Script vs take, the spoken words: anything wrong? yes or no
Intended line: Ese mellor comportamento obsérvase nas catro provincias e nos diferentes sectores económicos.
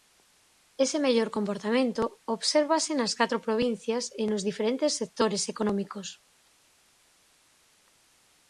no